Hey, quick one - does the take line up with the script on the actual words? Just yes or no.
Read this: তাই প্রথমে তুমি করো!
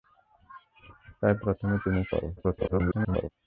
no